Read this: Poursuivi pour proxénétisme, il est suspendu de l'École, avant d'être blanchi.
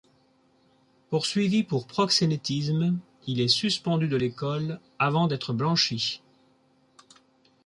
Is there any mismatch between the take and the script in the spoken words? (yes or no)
no